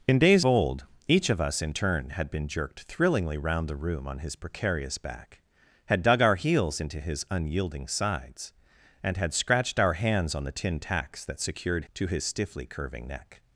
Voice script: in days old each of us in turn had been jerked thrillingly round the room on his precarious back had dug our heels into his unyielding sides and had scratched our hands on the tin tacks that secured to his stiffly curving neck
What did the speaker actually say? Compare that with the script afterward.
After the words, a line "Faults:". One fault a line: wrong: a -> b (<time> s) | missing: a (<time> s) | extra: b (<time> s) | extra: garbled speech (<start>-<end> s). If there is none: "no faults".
in days old each of us in turn had been jerked thrillingly round the room on his precarious back had dug our heels into his unyielding sides and had scratched our hands on the tin tacks that secured to his stiffly curving neck
Faults:
no faults